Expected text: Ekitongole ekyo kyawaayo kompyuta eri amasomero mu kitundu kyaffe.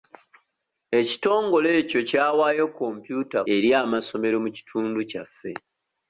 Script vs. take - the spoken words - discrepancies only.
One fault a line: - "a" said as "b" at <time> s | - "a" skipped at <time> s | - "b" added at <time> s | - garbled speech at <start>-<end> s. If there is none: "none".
none